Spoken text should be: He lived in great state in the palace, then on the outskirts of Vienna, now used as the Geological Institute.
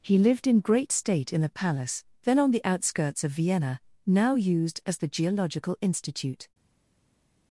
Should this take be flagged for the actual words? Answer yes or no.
no